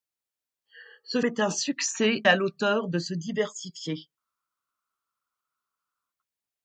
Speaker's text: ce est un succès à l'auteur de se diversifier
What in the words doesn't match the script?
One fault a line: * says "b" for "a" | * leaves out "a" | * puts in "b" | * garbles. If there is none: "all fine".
all fine